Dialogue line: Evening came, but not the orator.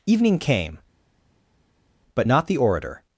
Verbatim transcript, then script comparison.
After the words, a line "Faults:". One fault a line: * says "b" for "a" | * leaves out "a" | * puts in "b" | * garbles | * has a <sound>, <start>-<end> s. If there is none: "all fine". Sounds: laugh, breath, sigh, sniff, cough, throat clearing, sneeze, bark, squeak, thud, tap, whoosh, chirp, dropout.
Evening came, but not the orator.
Faults:
all fine